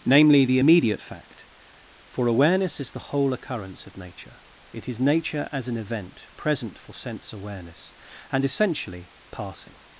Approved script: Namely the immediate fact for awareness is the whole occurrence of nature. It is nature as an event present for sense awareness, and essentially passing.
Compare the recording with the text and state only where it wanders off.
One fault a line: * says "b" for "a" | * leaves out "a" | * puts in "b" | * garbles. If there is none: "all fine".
all fine